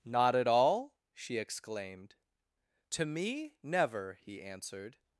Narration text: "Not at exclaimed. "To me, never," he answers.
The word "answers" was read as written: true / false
false